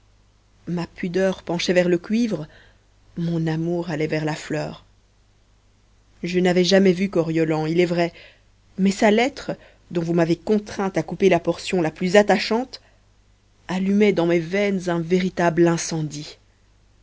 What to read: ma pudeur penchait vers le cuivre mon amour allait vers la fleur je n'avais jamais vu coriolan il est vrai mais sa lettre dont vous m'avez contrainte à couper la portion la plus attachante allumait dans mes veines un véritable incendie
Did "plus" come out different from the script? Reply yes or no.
no